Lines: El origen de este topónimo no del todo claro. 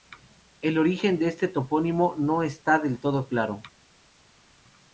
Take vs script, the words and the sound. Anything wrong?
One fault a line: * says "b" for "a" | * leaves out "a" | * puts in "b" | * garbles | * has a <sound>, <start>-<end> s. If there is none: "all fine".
* puts in "está"